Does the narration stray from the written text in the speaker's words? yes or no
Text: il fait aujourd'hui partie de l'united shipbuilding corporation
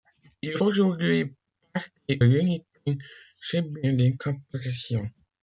yes